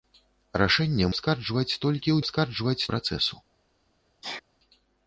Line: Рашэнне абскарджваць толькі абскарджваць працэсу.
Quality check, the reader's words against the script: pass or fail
pass